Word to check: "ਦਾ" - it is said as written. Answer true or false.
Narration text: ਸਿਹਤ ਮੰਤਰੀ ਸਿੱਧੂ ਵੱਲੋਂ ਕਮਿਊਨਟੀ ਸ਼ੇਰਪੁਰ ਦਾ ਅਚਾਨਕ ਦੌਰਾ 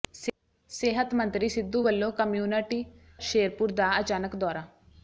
true